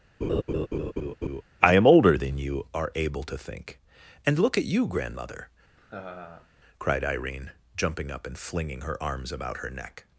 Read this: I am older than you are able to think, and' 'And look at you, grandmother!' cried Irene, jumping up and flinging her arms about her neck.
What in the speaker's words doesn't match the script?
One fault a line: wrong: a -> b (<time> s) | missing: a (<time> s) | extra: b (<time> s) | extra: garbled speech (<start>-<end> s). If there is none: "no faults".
missing: And (4.4 s)